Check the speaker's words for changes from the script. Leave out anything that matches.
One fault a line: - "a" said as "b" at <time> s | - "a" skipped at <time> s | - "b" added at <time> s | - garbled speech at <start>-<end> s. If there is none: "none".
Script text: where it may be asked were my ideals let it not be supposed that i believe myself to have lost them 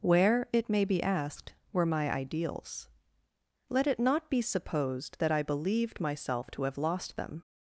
- "believe" said as "believed" at 5.4 s